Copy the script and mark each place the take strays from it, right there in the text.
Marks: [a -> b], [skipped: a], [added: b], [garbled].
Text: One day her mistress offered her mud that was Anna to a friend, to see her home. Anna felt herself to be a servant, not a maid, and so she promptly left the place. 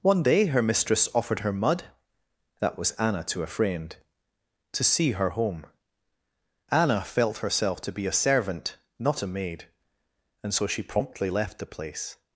One day her mistress offered her mud that was Anna to a friend, to see her home. Anna felt herself to be a servant, not a maid, and so she promptly left the place.